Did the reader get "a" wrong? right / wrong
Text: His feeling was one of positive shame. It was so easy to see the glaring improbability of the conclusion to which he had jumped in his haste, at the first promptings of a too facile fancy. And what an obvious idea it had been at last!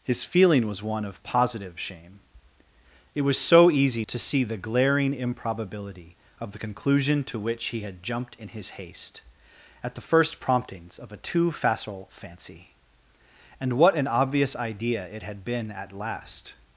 right